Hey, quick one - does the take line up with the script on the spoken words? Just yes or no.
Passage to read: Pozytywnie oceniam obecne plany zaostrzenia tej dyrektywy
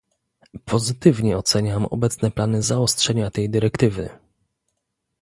yes